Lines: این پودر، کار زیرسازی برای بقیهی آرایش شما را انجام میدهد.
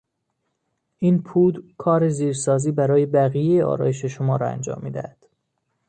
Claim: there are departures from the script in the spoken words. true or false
false